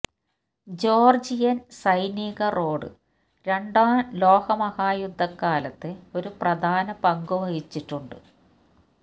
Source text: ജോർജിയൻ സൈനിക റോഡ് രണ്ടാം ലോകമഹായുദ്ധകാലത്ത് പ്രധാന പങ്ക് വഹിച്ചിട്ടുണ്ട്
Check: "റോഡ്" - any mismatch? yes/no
no